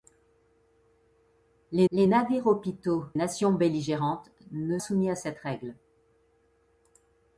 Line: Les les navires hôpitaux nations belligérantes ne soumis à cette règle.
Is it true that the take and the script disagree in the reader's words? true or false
false